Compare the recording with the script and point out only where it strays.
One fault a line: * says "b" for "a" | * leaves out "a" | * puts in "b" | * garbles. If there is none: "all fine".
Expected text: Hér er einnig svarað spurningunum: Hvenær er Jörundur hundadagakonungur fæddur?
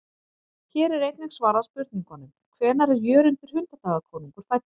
all fine